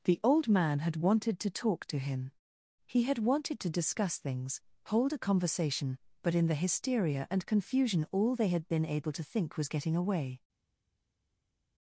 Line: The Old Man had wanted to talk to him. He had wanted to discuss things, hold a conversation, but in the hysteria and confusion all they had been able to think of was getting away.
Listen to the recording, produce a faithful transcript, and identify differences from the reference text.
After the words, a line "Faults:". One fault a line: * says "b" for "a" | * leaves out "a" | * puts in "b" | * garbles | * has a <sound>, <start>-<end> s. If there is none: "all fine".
The Old Man had wanted to talk to him. He had wanted to discuss things, hold a conversation, but in the hysteria and confusion all they had been able to think was getting away.
Faults:
* leaves out "of"